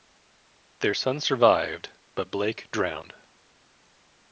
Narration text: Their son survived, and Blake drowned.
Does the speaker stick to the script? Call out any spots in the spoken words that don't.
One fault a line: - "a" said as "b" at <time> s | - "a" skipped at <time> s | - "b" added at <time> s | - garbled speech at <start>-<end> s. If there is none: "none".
- "and" said as "but" at 2.1 s